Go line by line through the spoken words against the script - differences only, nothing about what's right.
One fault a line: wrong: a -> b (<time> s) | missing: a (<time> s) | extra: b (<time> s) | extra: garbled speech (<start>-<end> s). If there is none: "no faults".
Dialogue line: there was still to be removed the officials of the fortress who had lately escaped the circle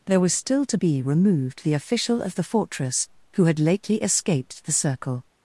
wrong: officials -> official (1.7 s)